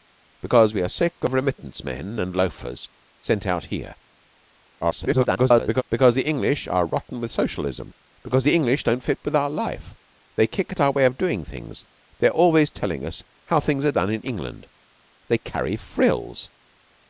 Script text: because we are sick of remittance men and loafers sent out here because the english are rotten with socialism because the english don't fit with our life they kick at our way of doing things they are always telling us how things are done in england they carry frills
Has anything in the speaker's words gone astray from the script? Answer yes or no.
yes